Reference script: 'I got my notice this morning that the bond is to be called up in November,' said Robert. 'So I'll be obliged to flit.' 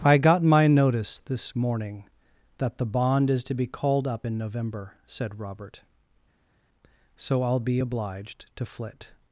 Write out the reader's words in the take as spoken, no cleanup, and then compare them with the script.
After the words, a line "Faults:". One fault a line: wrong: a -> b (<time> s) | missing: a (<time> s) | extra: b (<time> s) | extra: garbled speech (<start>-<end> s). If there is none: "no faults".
'I got my notice this morning that the bond is to be called up in November,' said Robert. 'So I'll be obliged to flit.'
Faults:
no faults